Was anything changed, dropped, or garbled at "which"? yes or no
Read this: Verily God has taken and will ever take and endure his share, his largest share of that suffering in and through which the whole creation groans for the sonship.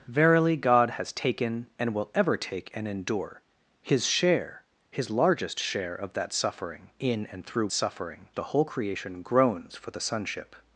yes